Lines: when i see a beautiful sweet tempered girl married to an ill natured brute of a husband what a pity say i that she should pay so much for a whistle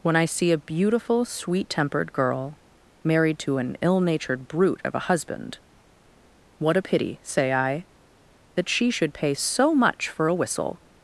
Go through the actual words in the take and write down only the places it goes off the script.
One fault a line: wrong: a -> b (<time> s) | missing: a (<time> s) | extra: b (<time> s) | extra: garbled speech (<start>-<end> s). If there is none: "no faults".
no faults